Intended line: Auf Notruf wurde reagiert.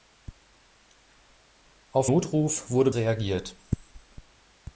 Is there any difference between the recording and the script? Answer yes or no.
no